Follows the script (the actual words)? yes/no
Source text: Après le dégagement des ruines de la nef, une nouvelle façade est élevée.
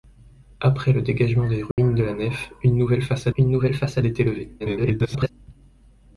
no